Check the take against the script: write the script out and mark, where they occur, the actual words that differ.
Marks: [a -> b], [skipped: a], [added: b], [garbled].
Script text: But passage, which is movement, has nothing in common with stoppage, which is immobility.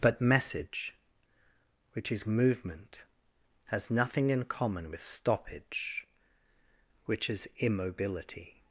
But [passage, -> message] which is movement, has nothing in common with stoppage, which is immobility.